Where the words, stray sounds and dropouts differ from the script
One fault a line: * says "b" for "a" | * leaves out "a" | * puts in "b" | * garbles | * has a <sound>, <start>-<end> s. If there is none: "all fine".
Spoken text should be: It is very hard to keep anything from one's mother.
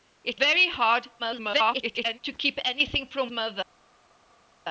* leaves out "is"
* garbles
* leaves out "one's"